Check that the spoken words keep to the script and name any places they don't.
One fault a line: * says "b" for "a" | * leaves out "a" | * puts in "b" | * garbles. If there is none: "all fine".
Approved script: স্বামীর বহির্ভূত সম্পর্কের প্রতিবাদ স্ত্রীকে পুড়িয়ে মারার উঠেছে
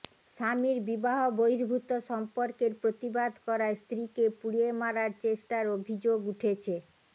* puts in "বিবাহ"
* puts in "করায়"
* puts in "চেষ্টার অভিযোগ"